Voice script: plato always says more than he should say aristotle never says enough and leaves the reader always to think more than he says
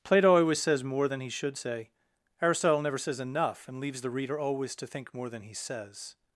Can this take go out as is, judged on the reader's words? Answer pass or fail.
pass